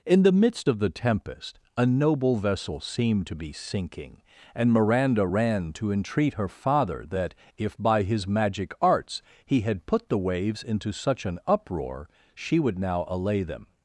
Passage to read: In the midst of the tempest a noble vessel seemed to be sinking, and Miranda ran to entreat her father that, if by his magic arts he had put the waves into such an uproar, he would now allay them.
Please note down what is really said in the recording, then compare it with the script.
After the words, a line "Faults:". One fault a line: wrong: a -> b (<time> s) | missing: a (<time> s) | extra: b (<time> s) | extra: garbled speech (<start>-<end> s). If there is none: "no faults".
In the midst of the tempest a noble vessel seemed to be sinking, and Miranda ran to entreat her father that, if by his magic arts he had put the waves into such an uproar, she would now allay them.
Faults:
wrong: he -> she (12.3 s)